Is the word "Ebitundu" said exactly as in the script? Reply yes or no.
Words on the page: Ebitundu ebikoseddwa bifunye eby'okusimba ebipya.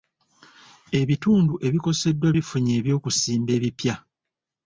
yes